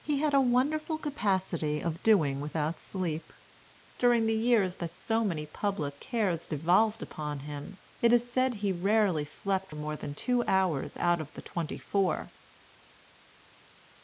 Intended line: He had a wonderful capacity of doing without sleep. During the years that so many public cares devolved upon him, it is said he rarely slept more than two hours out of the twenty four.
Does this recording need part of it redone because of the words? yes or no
no